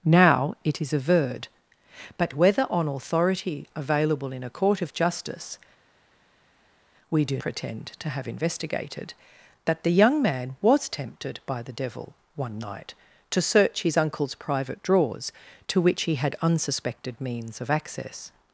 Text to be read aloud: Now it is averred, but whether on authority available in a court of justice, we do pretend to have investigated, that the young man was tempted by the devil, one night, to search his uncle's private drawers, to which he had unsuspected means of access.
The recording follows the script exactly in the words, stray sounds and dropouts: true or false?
true